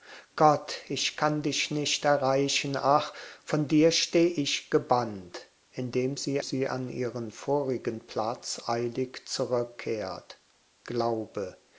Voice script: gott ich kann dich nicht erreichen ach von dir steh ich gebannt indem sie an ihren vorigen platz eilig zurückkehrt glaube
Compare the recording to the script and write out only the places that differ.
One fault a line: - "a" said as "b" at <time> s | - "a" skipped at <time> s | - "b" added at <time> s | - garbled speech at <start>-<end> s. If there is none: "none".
- "sie" added at 6.4 s